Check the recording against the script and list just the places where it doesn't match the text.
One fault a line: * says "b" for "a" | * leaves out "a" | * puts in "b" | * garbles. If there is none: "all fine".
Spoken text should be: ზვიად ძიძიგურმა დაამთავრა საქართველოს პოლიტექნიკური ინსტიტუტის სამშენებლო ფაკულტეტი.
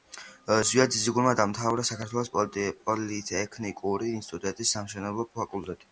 all fine